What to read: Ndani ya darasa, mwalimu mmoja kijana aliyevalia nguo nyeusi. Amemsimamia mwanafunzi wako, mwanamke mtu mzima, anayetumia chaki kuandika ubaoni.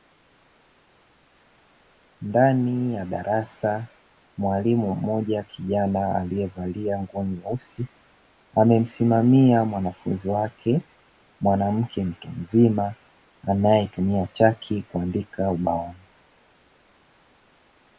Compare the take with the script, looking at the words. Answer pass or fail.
fail